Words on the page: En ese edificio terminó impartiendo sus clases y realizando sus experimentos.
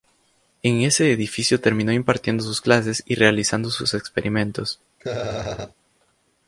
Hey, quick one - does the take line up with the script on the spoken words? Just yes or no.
yes